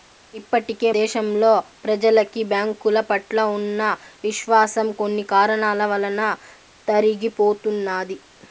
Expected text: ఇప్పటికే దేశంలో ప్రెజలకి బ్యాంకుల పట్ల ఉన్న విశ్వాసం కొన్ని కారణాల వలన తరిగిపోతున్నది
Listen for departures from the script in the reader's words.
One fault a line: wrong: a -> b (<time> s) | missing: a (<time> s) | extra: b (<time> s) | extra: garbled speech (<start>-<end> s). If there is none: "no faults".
no faults